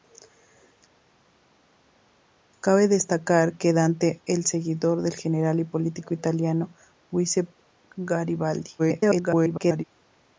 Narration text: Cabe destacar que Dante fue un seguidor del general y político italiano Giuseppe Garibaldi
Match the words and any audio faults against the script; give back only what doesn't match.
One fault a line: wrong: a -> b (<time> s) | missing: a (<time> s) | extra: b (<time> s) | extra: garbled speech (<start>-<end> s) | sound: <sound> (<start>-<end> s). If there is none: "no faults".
missing: fue (4.2 s)
extra: garbled speech (8.8-9.8 s)